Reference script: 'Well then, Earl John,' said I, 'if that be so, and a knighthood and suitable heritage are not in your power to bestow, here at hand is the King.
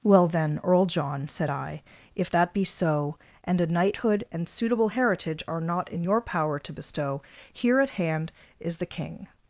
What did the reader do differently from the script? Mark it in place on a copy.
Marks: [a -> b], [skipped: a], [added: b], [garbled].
'Well then, Earl John,' said I, 'if that be so, and a knighthood and suitable heritage are not in your power to bestow, here at hand is the King.